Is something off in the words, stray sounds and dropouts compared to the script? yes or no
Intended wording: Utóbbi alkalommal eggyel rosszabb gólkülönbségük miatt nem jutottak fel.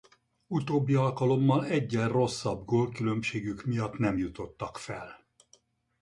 no